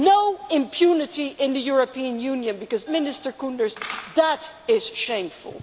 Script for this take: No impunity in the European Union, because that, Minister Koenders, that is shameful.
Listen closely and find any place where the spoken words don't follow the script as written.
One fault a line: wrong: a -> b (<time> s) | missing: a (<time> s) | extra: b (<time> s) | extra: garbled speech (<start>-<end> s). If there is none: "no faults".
missing: that (2.9 s)